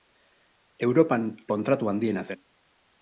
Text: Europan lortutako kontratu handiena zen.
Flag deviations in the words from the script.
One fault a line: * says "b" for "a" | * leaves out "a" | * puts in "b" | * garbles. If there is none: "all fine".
* leaves out "lortutako"